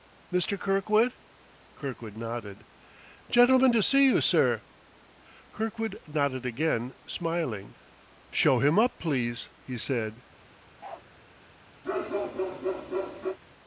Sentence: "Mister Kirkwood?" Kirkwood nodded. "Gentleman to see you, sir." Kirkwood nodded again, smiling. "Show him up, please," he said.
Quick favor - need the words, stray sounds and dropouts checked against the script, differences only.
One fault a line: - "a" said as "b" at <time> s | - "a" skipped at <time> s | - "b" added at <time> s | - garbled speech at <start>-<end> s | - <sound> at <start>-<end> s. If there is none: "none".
- bark at 10.8-11.0 s
- bark at 11.8-13.4 s